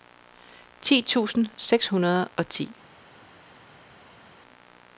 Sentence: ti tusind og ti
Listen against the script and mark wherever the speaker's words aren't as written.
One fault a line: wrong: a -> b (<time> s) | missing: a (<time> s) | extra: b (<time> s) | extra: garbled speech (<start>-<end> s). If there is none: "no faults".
extra: seks hundrede (1.6 s)